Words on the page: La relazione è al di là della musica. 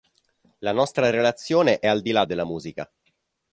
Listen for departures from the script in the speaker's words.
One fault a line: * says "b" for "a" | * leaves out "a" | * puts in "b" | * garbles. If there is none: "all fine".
* puts in "nostra"